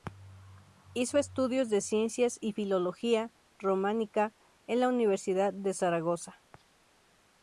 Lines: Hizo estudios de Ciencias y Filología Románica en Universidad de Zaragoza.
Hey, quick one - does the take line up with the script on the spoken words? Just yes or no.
no